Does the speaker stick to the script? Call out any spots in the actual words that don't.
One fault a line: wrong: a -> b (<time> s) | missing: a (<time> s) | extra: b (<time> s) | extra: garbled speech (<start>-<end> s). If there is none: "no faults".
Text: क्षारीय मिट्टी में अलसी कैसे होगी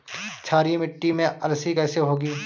no faults